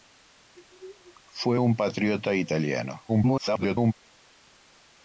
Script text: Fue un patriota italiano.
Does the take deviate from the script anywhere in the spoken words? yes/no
yes